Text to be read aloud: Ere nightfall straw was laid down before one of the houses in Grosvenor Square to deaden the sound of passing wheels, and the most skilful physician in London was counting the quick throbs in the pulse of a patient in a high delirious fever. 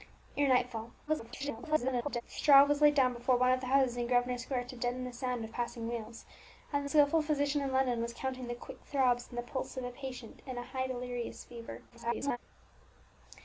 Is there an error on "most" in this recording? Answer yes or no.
yes